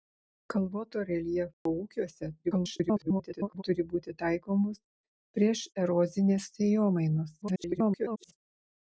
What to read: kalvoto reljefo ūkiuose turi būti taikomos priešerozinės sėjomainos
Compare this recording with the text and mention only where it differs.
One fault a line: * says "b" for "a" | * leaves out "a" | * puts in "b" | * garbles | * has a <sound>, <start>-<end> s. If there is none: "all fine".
* has a dropout, 1.5-1.7 s
* garbles
* garbles